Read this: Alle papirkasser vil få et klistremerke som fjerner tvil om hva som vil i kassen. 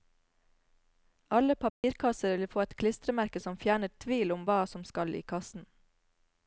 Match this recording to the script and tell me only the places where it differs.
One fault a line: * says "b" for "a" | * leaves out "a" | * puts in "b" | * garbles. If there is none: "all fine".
* says "skal" for "vil"